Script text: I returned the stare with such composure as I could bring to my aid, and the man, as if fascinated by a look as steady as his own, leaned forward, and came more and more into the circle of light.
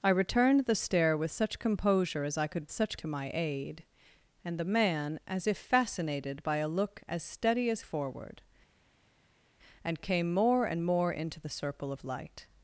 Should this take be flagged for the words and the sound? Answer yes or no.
yes